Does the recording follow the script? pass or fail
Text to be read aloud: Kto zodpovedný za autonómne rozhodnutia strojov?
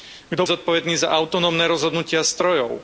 pass